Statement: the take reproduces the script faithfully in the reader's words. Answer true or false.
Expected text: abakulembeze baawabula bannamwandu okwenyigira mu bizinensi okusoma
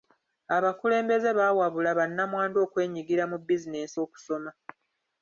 true